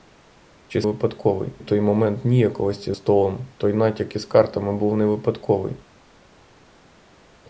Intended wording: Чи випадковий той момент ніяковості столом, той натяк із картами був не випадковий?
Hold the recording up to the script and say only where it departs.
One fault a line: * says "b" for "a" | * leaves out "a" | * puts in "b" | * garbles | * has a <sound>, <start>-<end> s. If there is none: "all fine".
all fine